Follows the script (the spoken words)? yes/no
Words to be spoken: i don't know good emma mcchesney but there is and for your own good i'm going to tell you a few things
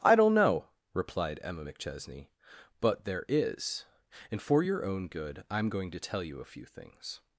no